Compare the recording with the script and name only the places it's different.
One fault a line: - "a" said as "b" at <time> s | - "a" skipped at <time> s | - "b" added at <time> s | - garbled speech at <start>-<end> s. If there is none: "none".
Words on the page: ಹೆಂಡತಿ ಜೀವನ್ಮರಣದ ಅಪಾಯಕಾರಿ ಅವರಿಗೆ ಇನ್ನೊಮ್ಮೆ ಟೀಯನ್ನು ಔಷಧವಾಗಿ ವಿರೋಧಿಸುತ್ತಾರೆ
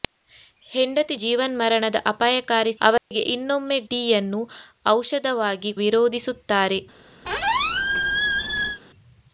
none